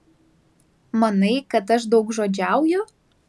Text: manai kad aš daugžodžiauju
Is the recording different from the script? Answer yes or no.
no